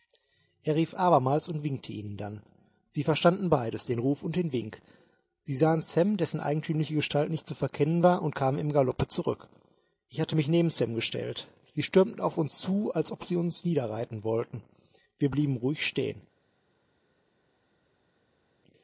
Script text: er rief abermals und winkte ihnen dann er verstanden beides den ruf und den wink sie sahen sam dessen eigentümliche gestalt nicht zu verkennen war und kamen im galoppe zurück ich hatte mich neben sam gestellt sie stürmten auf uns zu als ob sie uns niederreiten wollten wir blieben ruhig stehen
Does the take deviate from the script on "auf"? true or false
false